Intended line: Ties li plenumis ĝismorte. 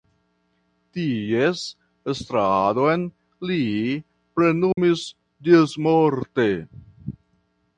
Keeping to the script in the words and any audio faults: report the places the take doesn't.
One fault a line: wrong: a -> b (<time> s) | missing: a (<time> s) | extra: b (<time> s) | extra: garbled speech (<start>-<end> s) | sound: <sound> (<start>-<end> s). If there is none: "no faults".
extra: estradon (2.1 s)
sound: dropout (4.7-4.8 s)